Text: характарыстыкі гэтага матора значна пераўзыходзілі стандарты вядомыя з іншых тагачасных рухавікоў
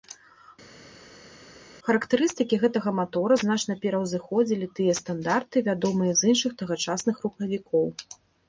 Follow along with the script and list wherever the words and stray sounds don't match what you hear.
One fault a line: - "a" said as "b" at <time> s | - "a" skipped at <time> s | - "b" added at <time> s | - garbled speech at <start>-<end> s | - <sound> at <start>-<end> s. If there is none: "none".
- "тыя" added at 4.8 s